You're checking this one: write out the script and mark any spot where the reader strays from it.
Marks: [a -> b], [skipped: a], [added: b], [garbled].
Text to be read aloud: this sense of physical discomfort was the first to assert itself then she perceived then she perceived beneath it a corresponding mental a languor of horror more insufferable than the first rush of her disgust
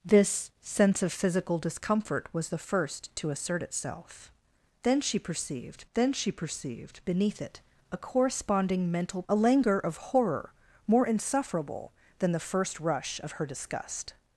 this sense of physical discomfort was the first to assert itself then she perceived then she perceived beneath it a corresponding mental a languor of horror more insufferable than the first rush of her disgust